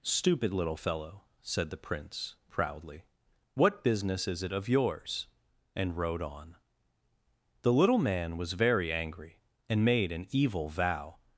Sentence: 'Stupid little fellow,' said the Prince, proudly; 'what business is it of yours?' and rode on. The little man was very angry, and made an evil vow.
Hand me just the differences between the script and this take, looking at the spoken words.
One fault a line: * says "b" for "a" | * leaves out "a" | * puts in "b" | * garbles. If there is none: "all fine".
all fine